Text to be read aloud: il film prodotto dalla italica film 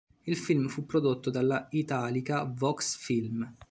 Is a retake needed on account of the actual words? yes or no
yes